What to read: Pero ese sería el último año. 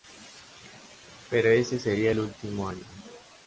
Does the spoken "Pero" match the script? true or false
true